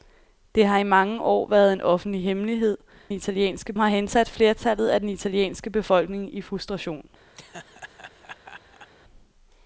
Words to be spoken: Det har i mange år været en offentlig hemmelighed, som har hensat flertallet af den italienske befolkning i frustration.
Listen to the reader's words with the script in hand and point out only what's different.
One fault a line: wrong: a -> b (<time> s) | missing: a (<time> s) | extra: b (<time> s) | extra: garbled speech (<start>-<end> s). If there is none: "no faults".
wrong: som -> italienske (3.1 s)